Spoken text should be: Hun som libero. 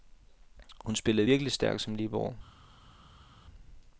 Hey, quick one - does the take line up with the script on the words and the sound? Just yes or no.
no